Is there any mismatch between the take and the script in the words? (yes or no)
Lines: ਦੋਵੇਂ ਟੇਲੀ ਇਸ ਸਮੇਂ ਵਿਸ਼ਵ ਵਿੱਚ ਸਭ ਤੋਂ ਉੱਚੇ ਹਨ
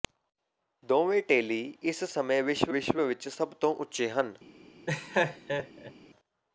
yes